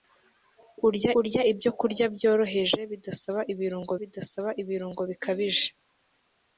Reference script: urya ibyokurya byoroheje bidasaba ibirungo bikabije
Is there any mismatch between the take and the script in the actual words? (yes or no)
yes